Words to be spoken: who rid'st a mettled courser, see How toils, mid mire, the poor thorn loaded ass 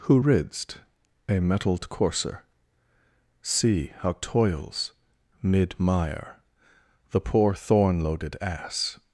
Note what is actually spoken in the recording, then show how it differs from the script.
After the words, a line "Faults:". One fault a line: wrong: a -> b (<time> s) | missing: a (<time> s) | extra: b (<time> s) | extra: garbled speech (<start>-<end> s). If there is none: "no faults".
who rid'st a mettled courser, see How toils, mid mire, the poor thorn loaded ass
Faults:
no faults